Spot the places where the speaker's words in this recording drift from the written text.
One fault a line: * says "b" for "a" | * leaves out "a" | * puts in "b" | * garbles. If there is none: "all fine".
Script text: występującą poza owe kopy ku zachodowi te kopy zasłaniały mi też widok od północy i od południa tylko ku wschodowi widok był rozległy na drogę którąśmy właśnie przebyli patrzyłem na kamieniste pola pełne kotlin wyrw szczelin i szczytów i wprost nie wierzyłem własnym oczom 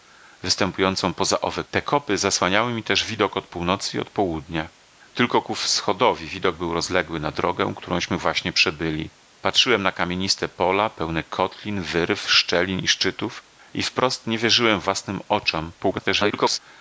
* leaves out "kopy ku zachodowi"
* garbles